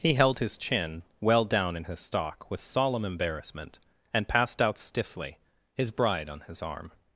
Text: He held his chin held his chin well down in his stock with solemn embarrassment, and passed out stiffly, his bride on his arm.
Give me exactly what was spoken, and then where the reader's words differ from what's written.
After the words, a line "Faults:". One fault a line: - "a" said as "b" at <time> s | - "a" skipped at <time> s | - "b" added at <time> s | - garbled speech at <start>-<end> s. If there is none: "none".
He held his chin well down in his stock with solemn embarrassment, and passed out stiffly, his bride on his arm.
Faults:
- "held his chin" skipped at 1.0 s